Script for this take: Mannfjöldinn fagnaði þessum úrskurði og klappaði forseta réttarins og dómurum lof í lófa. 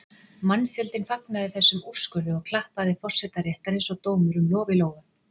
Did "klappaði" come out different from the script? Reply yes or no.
no